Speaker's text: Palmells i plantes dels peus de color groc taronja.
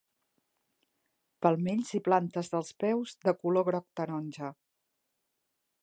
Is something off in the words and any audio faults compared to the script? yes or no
no